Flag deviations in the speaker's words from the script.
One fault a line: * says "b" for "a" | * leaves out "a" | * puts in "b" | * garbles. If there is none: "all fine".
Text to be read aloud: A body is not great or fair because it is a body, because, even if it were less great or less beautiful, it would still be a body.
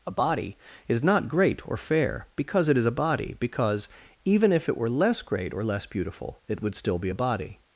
all fine